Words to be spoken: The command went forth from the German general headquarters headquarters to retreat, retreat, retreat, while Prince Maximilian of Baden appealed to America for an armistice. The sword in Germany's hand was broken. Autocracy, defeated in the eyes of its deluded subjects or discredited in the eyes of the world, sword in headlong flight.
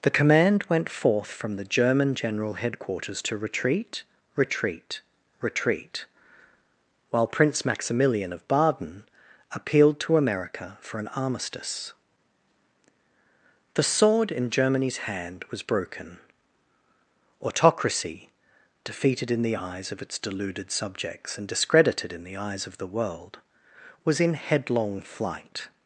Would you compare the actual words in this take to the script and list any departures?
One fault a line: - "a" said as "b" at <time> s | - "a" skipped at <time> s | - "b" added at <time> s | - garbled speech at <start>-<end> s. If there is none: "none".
- "headquarters" skipped at 3.2 s
- "or" said as "and" at 21.4 s
- "sword" said as "was" at 24.0 s